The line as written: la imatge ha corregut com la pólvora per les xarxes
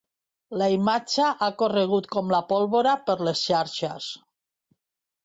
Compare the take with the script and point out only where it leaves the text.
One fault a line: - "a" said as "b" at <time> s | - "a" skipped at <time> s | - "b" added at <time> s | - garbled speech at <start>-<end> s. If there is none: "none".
none